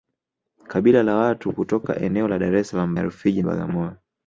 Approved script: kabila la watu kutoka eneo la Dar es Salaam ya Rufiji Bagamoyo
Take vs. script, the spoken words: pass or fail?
pass